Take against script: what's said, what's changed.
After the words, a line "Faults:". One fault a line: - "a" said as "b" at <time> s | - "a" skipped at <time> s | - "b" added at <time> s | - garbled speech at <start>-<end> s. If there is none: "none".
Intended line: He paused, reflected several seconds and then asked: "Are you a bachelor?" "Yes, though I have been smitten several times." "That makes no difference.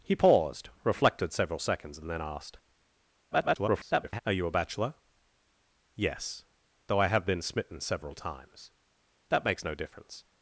He paused, reflected several seconds and then asked: [garbled] "Are you a bachelor?" "Yes, though I have been smitten several times." "That makes no difference.
Faults:
- garbled speech at 3.3-4.2 s